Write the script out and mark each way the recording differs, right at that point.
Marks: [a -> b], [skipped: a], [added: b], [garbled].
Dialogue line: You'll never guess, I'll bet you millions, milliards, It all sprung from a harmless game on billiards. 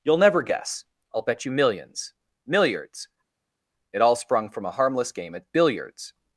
You'll never guess, I'll bet you millions, milliards, It all sprung from a harmless game [on -> at] billiards.